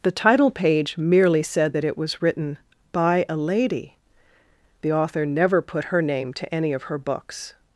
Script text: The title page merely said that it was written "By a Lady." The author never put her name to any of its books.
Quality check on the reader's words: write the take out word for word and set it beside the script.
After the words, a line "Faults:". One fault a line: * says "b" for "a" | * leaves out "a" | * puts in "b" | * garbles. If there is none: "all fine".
The title page merely said that it was written "By a Lady." The author never put her name to any of her books.
Faults:
* says "her" for "its"